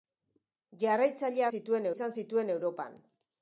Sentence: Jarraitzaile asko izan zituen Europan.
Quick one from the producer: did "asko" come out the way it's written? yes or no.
no